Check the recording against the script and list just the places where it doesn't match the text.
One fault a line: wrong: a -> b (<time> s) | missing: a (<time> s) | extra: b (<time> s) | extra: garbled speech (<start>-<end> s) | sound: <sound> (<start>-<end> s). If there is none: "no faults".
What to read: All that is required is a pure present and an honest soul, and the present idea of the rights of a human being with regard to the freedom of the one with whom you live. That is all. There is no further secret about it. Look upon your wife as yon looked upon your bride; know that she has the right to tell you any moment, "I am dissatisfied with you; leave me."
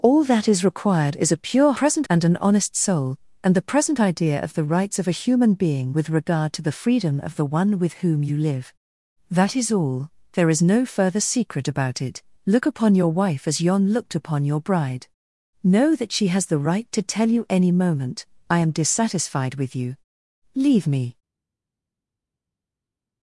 no faults